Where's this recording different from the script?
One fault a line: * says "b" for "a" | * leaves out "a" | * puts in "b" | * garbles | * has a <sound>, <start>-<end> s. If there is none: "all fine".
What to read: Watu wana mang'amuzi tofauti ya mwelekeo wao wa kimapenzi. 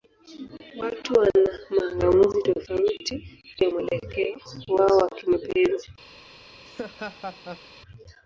* has a laugh, 6.6-7.7 s